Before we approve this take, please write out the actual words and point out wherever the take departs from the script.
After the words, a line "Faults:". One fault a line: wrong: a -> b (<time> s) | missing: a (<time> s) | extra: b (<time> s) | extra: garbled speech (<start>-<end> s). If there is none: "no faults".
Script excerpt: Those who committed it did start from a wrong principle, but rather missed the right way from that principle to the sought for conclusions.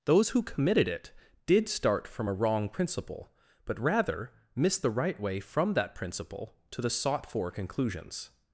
Those who committed it did start from a wrong principle, but rather missed the right way from that principle to the sought for conclusions.
Faults:
no faults